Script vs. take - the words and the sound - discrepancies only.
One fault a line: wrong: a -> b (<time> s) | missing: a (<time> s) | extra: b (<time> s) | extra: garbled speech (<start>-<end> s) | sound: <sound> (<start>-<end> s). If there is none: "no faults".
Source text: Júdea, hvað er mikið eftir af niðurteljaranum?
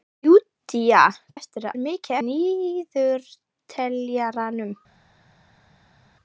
wrong: hvað -> eftir (1.4 s)
missing: eftir af (2.2 s)